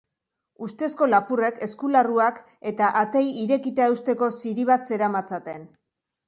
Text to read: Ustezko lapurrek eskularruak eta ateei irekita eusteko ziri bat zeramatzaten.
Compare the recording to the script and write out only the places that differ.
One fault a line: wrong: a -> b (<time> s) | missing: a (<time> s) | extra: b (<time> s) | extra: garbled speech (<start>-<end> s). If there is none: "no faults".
no faults